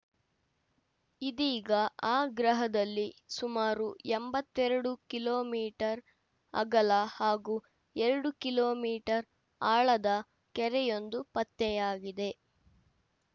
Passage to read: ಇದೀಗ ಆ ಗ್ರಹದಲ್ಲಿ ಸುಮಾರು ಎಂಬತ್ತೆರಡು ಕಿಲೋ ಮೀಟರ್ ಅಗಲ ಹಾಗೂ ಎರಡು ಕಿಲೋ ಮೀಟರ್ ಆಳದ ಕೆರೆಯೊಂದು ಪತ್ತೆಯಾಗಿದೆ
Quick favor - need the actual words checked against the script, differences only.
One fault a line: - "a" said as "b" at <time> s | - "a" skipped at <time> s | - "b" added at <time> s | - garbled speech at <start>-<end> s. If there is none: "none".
none